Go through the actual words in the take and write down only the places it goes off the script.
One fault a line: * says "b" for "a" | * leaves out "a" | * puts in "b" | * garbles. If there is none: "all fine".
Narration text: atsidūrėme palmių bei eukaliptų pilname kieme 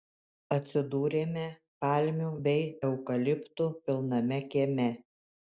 all fine